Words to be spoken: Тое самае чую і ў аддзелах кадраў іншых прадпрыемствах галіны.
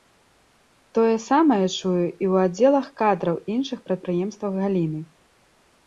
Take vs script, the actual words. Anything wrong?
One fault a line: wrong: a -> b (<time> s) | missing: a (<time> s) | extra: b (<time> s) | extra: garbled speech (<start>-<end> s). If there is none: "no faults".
no faults